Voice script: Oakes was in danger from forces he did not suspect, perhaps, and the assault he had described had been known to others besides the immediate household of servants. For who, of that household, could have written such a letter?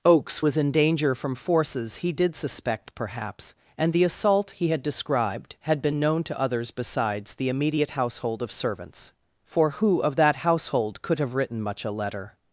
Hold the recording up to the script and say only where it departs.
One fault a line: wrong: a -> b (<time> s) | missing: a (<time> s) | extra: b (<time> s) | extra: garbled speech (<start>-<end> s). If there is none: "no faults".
missing: not (2.3 s)
wrong: such -> much (11.6 s)